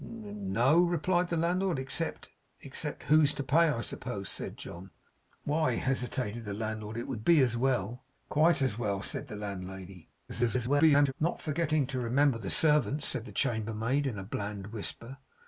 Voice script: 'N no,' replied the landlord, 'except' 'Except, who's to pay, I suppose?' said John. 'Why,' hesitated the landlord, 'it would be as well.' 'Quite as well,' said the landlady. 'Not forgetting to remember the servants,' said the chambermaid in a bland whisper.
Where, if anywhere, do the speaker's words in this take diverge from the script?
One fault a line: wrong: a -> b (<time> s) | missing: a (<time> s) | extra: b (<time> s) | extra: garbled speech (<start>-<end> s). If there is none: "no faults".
extra: garbled speech (10.3-11.1 s)